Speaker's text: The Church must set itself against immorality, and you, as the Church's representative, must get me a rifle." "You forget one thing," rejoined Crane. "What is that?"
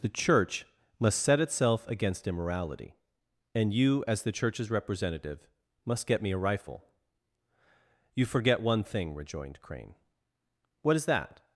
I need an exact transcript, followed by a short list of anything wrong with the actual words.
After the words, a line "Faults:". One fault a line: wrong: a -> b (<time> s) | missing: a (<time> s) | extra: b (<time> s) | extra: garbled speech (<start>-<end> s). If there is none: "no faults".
The Church must set itself against immorality, and you, as the Church's representative, must get me a rifle." "You forget one thing," rejoined Crane. "What is that?"
Faults:
no faults